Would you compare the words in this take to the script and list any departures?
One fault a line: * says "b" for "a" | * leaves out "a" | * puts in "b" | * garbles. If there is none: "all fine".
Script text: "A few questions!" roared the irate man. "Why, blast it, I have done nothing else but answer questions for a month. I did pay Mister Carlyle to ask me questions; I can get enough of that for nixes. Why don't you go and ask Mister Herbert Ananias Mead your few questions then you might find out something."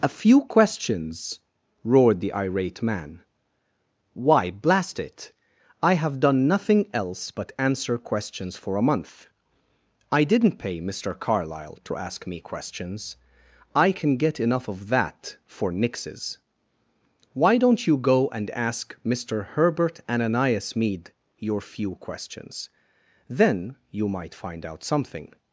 * says "didn't" for "did"